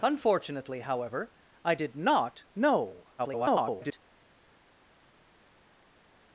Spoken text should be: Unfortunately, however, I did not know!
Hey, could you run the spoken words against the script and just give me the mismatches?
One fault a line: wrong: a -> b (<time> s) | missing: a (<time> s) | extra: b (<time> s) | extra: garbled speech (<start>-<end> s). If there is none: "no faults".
extra: garbled speech (3.2-4.0 s)